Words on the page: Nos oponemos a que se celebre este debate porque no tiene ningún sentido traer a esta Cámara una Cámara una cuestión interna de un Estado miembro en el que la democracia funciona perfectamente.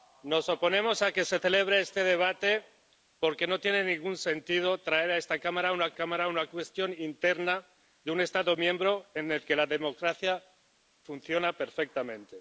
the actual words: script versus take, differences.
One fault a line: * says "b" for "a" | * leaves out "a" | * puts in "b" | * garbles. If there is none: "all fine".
all fine